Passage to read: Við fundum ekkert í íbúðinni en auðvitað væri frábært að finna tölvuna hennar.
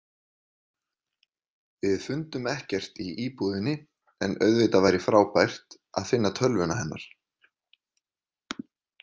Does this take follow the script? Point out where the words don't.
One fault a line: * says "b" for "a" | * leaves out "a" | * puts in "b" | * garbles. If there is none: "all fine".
all fine